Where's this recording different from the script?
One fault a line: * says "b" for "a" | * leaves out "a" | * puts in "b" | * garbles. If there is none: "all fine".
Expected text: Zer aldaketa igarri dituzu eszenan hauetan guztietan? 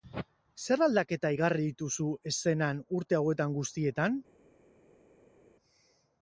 * puts in "urte"